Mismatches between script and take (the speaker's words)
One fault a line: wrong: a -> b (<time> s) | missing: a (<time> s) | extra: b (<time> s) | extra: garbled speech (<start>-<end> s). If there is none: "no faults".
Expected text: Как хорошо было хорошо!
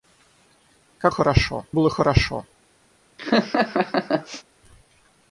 no faults